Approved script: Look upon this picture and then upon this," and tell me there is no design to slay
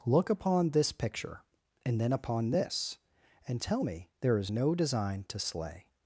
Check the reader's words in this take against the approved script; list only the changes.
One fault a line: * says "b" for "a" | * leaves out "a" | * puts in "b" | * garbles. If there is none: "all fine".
all fine